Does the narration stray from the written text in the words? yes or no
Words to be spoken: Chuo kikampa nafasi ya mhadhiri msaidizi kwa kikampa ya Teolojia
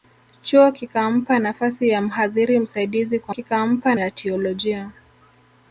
no